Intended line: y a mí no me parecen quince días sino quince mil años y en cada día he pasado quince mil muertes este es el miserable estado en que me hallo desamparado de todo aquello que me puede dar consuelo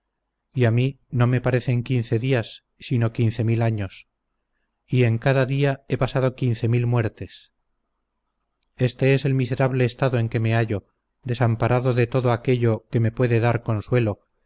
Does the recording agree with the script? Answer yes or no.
yes